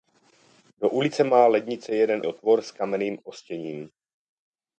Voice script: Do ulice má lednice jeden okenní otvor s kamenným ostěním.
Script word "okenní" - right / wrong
wrong